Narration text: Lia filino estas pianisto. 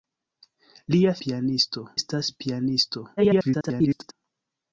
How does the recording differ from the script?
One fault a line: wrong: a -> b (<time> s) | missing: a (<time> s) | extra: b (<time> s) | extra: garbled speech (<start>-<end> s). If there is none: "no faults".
wrong: filino -> pianisto (1.2 s)
extra: garbled speech (3.2-4.1 s)